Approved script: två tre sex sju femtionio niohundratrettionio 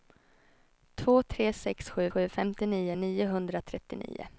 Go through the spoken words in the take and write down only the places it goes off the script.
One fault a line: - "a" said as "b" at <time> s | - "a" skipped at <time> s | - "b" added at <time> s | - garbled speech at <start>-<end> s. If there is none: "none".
- "sju" added at 2.1 s